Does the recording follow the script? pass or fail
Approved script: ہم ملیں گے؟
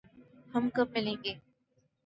fail